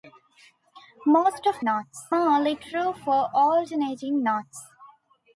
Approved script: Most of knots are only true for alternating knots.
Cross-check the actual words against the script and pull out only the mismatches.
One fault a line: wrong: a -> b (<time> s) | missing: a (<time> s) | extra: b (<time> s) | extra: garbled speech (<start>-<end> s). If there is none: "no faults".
no faults